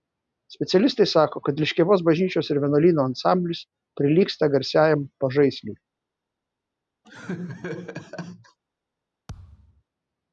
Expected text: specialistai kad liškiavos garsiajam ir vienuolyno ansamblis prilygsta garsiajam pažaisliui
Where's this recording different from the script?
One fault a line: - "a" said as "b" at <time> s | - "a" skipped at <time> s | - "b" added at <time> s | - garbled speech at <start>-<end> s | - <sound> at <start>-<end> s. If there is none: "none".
- "sako" added at 1.1 s
- "garsiajam" said as "bažnyčios" at 2.1 s
- laugh at 7.0-8.6 s
- thud at 9.3-9.8 s